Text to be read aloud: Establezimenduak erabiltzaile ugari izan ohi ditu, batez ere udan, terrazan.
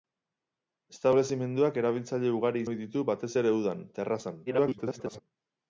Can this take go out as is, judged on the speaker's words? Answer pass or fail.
fail